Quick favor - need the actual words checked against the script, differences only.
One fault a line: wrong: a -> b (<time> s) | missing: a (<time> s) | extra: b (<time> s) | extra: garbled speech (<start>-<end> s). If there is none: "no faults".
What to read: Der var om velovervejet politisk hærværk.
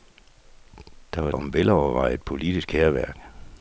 no faults